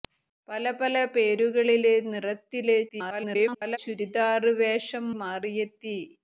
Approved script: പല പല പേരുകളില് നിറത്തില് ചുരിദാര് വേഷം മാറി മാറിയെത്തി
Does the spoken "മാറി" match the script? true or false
false